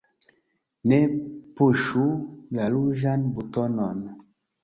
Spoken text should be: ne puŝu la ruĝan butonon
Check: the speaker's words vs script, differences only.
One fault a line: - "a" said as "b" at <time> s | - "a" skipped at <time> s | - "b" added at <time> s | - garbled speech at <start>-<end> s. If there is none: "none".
none